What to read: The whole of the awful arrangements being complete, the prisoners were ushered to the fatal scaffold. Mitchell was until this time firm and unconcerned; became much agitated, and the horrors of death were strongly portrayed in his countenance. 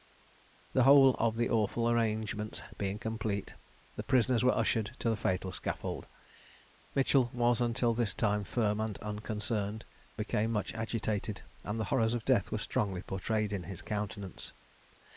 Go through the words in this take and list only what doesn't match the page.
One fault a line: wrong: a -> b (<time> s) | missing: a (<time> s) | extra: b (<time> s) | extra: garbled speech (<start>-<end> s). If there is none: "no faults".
no faults